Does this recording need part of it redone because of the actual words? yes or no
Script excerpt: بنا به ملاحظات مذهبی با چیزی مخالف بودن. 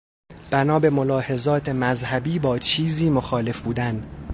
no